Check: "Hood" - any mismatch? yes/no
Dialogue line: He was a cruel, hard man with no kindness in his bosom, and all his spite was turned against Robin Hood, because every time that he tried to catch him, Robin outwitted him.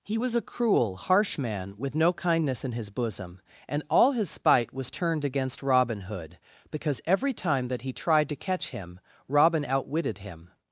no